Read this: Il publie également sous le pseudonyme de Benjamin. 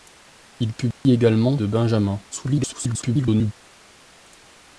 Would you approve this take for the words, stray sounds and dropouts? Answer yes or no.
no